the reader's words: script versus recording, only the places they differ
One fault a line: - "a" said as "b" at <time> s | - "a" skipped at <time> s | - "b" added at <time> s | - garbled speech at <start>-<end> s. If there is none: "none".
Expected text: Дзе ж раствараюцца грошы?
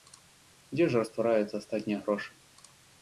- "астатнія" added at 1.6 s